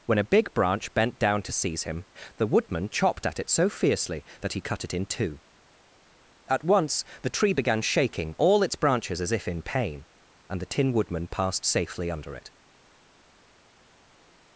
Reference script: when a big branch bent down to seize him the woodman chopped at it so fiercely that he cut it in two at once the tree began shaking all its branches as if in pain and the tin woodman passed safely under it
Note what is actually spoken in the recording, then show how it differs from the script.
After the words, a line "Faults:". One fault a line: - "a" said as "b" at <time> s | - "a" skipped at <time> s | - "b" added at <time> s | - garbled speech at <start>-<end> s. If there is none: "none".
when a big branch bent down to seize him the woodman chopped at it so fiercely that he cut it in two at once the tree began shaking all its branches as if in pain and the tin woodman passed safely under it
Faults:
none